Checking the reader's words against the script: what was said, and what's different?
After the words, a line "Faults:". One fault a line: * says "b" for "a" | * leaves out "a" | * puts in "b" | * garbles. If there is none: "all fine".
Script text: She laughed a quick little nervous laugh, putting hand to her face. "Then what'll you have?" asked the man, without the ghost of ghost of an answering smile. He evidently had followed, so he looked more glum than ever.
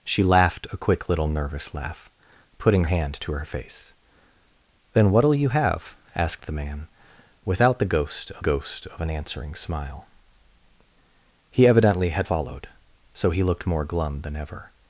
She laughed a quick little nervous laugh, putting hand to her face. "Then what'll you have?" asked the man, without the ghost of ghost of an answering smile. He evidently had followed, so he looked more glum than ever.
Faults:
all fine